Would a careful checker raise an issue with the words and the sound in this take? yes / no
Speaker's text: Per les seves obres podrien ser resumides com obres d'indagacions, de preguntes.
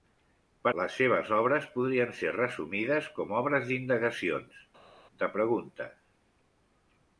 no